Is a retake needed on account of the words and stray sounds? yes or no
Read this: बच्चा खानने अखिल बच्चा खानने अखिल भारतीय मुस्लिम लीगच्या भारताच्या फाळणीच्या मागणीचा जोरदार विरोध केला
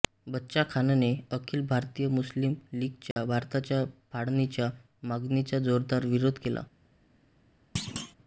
yes